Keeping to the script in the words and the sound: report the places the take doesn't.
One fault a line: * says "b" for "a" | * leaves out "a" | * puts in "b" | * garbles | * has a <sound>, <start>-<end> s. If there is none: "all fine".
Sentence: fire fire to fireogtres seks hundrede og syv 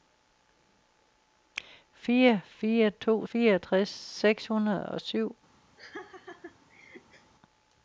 * has a laugh, 5.8-7.3 s